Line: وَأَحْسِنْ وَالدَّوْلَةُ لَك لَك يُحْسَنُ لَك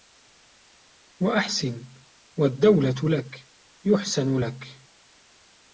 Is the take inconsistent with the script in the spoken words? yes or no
yes